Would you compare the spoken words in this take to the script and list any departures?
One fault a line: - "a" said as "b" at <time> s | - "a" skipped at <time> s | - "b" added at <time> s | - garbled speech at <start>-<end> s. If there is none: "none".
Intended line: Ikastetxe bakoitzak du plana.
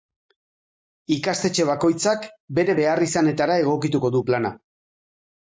- "bere beharrizanetara egokituko" added at 2.6 s